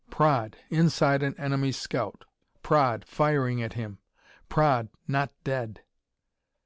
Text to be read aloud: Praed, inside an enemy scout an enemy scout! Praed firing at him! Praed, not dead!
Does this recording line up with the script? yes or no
no